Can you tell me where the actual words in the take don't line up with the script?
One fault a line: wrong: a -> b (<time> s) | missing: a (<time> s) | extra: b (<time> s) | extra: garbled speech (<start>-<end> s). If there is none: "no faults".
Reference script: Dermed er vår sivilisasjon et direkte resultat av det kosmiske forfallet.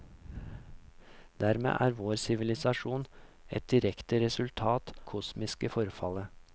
missing: av det (4.9 s)